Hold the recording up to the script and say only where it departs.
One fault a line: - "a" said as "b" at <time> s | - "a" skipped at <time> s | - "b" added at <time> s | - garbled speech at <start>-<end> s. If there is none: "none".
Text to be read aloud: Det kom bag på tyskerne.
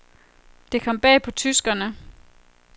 none